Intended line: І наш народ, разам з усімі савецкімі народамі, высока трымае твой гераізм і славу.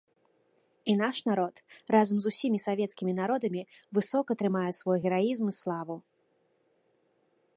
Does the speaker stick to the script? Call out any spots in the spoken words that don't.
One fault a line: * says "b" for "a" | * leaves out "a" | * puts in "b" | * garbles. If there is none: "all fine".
* says "свой" for "твой"